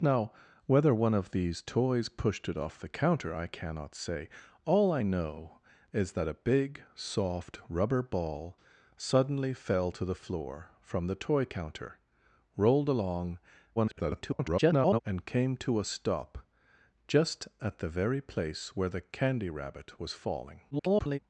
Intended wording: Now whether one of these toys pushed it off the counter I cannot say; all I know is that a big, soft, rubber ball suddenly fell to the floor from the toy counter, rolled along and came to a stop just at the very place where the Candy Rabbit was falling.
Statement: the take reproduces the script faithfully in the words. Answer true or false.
false